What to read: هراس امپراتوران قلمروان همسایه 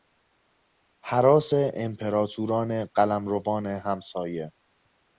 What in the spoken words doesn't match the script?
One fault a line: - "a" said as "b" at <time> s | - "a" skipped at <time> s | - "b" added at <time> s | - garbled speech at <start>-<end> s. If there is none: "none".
none